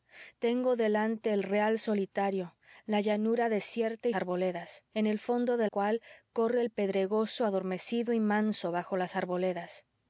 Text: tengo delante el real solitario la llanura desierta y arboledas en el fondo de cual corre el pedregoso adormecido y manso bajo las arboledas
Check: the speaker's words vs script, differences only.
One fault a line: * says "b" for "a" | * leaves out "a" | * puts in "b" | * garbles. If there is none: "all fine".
all fine